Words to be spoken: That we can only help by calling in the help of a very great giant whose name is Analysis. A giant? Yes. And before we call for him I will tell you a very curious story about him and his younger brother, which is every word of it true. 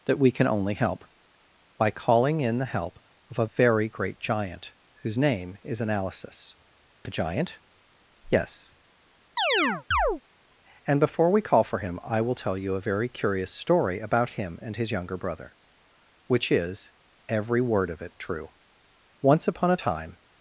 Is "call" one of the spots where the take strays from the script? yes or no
no